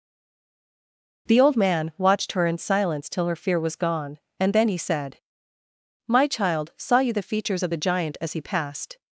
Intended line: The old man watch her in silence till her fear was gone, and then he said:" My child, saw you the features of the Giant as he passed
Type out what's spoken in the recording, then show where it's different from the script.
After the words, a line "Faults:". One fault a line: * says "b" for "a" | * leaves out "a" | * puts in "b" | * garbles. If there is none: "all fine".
The old man watched her in silence till her fear was gone, and then he said:" My child, saw you the features of the Giant as he passed
Faults:
* says "watched" for "watch"